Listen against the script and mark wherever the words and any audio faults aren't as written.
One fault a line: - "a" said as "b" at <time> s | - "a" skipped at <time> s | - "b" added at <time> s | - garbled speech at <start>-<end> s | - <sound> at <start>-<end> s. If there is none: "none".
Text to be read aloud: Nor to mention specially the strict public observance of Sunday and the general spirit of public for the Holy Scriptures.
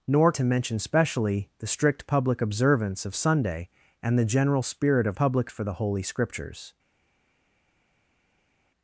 none